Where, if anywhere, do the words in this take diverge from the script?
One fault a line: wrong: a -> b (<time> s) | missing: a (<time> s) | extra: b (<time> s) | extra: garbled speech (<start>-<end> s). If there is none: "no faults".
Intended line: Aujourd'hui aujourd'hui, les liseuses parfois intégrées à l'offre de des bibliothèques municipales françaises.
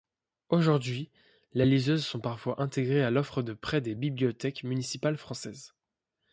missing: aujourd'hui (1.1 s)
extra: sont (2.1 s)
extra: prêt (3.5 s)